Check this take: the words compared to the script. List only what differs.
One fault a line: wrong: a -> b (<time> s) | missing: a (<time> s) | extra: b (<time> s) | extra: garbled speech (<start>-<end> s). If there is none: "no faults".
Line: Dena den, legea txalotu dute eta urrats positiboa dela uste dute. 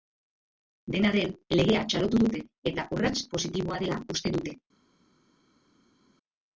no faults